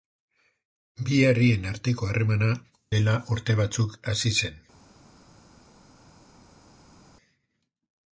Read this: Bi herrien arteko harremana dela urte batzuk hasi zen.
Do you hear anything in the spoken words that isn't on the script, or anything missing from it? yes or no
no